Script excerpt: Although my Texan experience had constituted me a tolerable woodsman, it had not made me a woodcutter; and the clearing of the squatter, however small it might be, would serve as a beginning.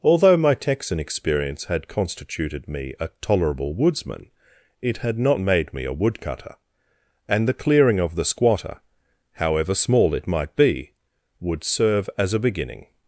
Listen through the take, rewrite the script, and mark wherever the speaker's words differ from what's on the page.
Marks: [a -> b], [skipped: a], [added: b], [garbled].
Although my Texan experience had constituted me a tolerable woodsman, it had not made me a woodcutter; and the clearing of the squatter, however small it might be, would serve as a beginning.